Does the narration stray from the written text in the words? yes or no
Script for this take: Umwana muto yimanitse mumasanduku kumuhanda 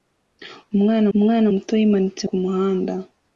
yes